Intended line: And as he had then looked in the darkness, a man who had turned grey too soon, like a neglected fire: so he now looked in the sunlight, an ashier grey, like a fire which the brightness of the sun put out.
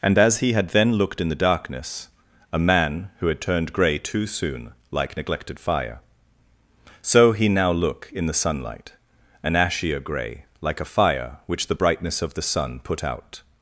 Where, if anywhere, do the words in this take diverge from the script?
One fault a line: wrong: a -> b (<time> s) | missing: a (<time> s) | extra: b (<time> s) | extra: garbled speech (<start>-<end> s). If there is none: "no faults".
missing: a (5.2 s)
wrong: looked -> look (7.7 s)